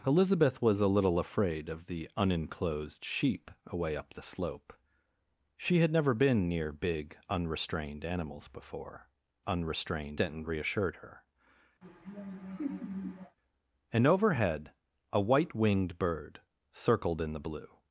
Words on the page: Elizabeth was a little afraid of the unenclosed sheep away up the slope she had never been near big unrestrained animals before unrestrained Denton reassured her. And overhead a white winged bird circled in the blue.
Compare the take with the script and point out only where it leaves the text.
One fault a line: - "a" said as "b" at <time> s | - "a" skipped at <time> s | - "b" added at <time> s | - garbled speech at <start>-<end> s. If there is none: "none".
none